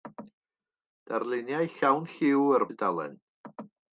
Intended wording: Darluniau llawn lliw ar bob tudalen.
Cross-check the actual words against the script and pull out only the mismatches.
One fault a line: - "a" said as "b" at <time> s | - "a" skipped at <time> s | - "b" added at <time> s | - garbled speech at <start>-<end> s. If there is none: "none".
- "bob" skipped at 2.7 s